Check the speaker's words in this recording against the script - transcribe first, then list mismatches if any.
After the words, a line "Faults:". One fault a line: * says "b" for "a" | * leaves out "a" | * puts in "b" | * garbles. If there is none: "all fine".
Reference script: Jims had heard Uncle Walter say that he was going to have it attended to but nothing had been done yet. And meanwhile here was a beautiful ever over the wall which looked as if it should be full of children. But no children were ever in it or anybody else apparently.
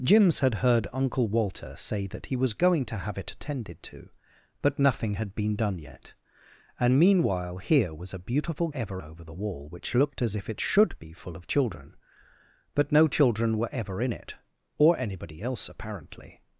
Jims had heard Uncle Walter say that he was going to have it attended to but nothing had been done yet. And meanwhile here was a beautiful ever over the wall which looked as if it should be full of children. But no children were ever in it or anybody else apparently.
Faults:
all fine